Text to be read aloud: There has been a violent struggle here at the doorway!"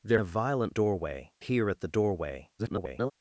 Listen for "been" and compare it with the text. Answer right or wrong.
wrong